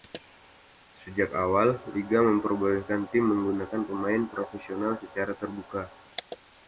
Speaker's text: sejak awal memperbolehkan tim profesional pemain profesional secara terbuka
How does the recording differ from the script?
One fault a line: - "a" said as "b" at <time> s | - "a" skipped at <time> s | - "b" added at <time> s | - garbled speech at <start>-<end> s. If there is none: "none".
- "liga" added at 1.9 s
- "profesional" said as "menggunakan" at 3.2 s